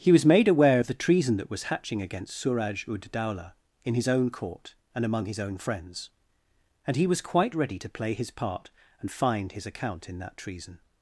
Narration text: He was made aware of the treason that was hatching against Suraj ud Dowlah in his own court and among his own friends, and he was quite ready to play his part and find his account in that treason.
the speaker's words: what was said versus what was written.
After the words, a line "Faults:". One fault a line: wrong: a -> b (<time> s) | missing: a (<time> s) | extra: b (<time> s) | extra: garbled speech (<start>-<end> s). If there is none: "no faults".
He was made aware of the treason that was hatching against Suraj ud Dowlah in his own court and among his own friends, and he was quite ready to play his part and find his account in that treason.
Faults:
no faults